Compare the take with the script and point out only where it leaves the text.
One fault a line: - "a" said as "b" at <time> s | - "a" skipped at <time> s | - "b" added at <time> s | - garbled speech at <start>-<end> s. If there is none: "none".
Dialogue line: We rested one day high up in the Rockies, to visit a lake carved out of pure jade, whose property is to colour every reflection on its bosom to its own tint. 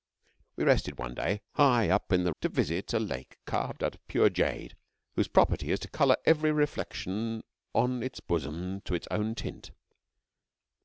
- "Rockies" skipped at 2.3 s